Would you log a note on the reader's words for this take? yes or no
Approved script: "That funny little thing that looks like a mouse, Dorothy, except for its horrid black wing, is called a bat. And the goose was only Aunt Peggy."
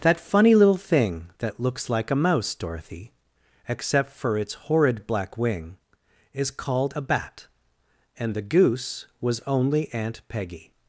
no